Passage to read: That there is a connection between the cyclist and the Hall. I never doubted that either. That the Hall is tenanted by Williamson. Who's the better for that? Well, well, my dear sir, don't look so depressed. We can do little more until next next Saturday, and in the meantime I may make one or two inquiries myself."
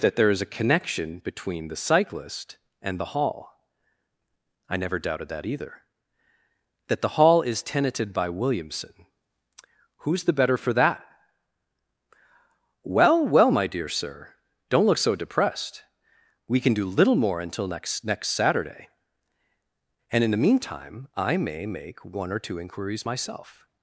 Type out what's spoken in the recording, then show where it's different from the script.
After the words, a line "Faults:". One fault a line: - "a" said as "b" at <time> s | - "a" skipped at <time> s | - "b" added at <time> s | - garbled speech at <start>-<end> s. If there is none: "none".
That there is a connection between the cyclist and the Hall. I never doubted that either. That the Hall is tenanted by Williamson. Who's the better for that? Well, well, my dear sir, don't look so depressed. We can do little more until next next Saturday, and in the meantime I may make one or two inquiries myself."
Faults:
none